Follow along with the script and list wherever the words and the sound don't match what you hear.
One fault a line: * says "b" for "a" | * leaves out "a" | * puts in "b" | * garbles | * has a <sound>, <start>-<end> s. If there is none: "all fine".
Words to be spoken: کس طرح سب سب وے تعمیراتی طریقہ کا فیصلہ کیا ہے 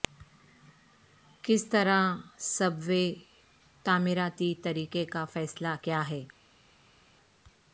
* leaves out "سب"